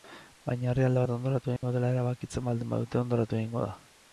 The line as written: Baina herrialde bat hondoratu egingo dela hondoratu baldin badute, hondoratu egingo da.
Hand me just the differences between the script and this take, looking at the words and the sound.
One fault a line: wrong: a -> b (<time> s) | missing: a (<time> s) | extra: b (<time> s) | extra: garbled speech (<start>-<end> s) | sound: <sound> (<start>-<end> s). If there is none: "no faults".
sound: dropout (1.6-1.6 s)
wrong: hondoratu -> erabakitzen (1.9 s)